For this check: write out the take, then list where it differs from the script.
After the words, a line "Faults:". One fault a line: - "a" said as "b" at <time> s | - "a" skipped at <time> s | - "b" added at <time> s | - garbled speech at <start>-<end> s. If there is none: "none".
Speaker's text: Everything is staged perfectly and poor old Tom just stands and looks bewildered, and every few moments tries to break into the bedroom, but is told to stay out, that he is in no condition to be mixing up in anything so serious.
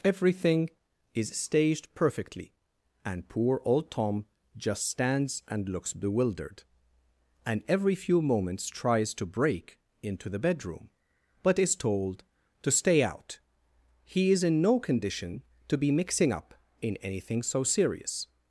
Everything is staged perfectly and poor old Tom just stands and looks bewildered, and every few moments tries to break into the bedroom, but is told to stay out, he is in no condition to be mixing up in anything so serious.
Faults:
- "that" skipped at 13.4 s